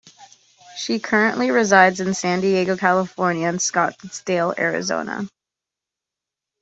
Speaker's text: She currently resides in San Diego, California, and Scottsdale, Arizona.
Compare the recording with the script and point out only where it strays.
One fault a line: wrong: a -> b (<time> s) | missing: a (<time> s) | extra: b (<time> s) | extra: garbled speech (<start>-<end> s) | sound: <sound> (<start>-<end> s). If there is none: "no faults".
no faults